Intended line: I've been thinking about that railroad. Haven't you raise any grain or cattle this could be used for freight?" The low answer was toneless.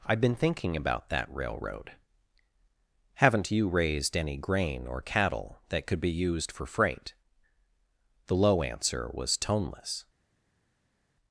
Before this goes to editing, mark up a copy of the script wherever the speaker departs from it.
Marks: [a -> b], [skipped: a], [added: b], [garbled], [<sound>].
I've been thinking about that railroad. Haven't you [raise -> raised] any grain or cattle [this -> that] could be used for freight?" The low answer was toneless.